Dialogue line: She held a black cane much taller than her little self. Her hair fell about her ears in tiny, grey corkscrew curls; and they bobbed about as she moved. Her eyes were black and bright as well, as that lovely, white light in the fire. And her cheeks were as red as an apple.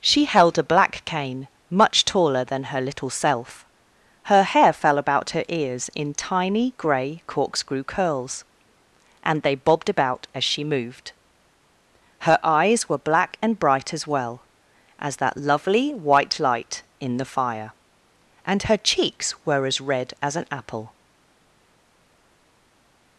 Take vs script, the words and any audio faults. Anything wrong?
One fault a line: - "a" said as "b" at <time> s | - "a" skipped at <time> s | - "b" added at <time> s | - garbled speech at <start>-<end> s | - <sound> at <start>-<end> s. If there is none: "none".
none